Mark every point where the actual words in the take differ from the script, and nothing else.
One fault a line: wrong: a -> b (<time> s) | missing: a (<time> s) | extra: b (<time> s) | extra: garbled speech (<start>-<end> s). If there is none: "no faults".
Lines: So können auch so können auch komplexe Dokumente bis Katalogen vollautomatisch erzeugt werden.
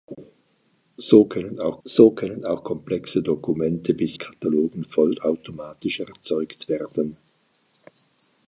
no faults